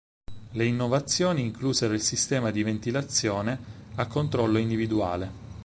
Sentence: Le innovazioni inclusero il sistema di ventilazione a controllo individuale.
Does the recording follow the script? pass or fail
pass